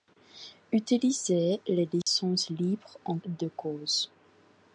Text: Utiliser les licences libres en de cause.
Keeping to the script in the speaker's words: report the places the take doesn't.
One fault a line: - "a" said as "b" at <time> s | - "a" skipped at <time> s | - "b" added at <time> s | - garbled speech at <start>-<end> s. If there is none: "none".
none